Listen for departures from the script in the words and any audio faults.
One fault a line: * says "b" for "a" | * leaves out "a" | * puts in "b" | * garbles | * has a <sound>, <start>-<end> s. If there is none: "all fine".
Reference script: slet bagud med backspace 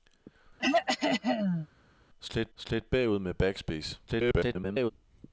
* has a throat clearing, 0.6-1.7 s
* puts in "slet"
* garbles